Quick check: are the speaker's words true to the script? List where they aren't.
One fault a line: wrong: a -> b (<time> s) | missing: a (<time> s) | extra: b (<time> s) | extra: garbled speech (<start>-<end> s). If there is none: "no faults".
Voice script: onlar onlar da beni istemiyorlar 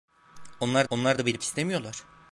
no faults